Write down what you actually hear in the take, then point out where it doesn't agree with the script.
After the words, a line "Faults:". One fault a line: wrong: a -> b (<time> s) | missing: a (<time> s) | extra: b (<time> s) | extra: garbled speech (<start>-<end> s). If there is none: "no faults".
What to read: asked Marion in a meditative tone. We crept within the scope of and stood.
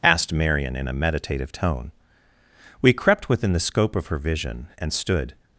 asked Marion in a meditative tone. We crept within the scope of her vision, and stood.
Faults:
extra: her vision (4.1 s)